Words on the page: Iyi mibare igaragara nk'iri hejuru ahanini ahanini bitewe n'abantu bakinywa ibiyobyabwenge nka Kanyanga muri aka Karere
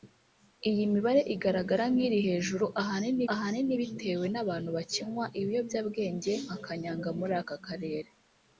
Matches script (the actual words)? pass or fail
pass